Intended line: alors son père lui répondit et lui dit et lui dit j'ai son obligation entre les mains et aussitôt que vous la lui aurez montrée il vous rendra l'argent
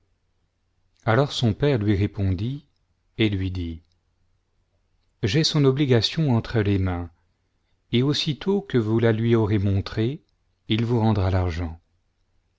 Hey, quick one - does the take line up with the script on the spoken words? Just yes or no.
no